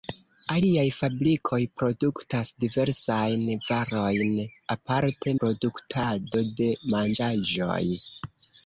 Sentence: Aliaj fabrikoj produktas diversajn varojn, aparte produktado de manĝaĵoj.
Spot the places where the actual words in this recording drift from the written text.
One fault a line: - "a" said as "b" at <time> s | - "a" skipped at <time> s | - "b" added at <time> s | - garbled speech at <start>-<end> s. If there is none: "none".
none